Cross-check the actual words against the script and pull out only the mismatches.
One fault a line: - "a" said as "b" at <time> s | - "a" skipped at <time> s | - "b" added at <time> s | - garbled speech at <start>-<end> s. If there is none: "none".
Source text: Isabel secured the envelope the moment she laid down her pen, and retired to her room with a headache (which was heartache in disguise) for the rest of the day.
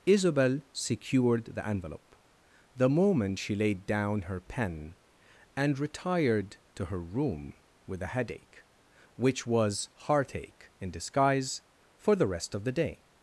none